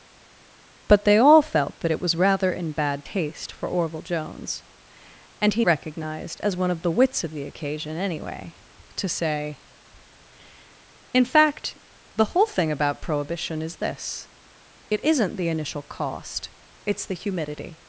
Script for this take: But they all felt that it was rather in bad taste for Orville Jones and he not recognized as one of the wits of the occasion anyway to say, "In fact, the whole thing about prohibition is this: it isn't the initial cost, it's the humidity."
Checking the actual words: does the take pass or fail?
fail